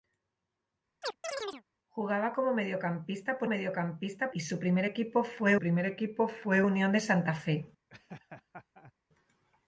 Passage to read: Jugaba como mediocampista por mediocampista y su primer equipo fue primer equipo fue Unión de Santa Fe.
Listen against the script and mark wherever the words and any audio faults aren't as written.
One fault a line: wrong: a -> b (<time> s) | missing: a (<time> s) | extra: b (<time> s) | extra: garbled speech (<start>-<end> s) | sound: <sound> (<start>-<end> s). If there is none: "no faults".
sound: chirp (1.0-1.6 s)
sound: laugh (7.9-8.9 s)